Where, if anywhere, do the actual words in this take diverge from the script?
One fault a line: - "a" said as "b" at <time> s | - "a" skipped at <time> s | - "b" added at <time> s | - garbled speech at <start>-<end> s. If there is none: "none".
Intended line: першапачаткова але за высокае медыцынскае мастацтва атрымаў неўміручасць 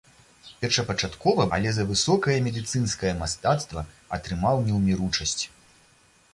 none